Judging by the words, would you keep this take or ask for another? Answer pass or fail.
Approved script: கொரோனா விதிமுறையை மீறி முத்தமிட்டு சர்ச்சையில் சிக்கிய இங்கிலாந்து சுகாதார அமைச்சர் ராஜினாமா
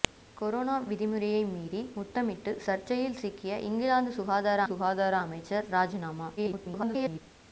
fail